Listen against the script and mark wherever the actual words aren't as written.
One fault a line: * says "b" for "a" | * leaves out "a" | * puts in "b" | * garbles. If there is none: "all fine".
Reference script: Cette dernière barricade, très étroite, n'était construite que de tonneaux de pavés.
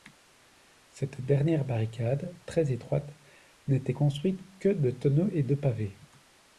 * puts in "et"